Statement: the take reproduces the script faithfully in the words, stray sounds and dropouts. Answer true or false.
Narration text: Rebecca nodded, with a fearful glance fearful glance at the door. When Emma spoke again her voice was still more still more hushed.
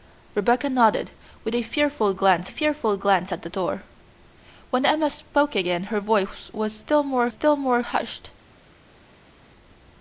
true